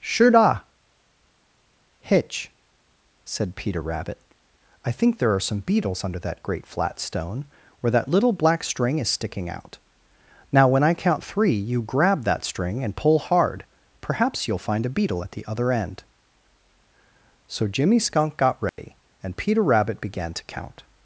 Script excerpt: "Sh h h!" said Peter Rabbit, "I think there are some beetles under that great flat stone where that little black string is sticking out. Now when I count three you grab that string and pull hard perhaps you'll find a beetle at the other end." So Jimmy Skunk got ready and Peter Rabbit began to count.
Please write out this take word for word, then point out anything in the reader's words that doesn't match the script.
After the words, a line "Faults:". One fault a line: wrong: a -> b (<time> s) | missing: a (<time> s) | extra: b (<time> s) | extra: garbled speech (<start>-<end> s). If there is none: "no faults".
"Sure da hitch!" said Peter Rabbit, "I think there are some beetles under that great flat stone where that little black string is sticking out. Now when I count three you grab that string and pull hard perhaps you'll find a beetle at the other end." So Jimmy Skunk got ready and Peter Rabbit began to count.
Faults:
wrong: Sh h h -> Sure da hitch (0.0 s)